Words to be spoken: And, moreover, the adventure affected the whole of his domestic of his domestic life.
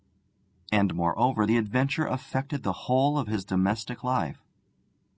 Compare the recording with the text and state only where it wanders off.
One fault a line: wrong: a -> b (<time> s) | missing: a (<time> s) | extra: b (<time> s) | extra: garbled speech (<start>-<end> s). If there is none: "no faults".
missing: of his domestic (4.0 s)